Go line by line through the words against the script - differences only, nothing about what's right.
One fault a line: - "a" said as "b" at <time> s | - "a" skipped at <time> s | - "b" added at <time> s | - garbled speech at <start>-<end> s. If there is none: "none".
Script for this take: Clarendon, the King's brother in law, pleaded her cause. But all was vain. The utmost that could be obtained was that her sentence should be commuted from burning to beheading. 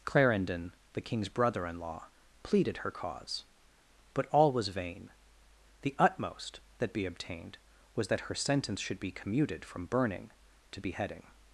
- "could" skipped at 6.9 s